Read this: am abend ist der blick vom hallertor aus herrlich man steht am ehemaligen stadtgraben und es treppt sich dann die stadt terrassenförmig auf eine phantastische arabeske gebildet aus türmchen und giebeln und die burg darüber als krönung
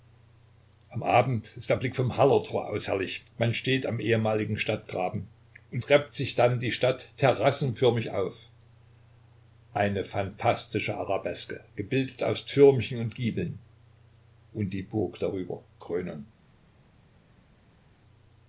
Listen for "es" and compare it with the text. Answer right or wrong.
wrong